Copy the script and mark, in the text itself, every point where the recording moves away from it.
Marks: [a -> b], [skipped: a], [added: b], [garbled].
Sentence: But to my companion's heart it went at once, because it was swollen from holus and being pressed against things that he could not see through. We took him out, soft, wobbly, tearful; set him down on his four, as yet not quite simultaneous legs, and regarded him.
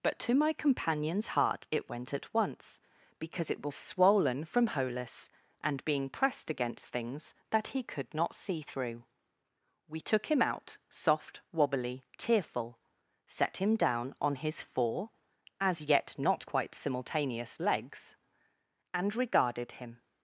But to my companion's heart it went at once, because it was swollen from holus and being pressed against things that he could not see through. We took him out, soft, wobbly, tearful; set him down on his four, as yet not quite simultaneous legs, and regarded him.